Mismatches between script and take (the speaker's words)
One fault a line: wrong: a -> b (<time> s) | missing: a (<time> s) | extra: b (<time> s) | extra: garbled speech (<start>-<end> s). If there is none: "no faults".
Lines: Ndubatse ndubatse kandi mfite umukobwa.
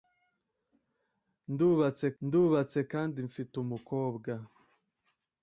no faults